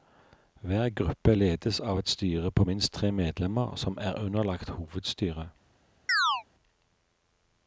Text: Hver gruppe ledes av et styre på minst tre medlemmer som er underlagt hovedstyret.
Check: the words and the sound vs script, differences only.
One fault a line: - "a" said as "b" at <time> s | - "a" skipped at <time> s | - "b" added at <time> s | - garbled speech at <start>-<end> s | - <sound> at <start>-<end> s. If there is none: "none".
- chirp at 6.1-6.4 s